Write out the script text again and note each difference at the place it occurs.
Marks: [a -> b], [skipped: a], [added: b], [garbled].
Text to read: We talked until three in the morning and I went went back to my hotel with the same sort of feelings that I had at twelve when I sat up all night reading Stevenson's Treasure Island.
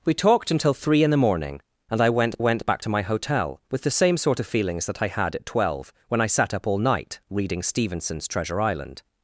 We talked until three in the morning and I went went back to my hotel with the same sort of feelings that I had at twelve when I sat up all night reading Stevenson's Treasure Island.